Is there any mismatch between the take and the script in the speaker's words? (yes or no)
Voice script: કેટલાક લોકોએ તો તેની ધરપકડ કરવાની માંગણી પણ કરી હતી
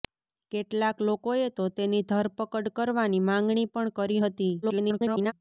yes